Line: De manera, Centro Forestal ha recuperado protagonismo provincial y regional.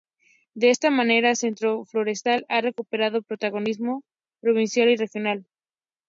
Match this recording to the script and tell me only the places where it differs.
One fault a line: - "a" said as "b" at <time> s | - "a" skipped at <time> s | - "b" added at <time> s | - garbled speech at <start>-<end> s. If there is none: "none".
- "esta" added at 0.7 s